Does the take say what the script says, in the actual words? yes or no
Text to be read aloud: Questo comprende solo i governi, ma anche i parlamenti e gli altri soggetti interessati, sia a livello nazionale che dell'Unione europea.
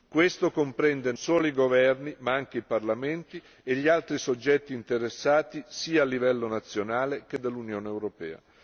yes